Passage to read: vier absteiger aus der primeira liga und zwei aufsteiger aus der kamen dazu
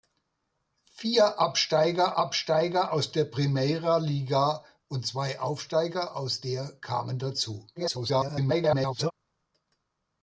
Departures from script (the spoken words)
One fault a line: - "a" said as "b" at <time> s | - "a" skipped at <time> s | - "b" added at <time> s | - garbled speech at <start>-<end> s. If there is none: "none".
- "absteiger" added at 2.2 s
- garbled speech at 7.8-9.1 s